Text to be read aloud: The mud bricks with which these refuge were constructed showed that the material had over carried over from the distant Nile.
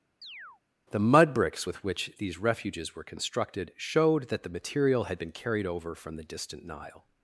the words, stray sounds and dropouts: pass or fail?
fail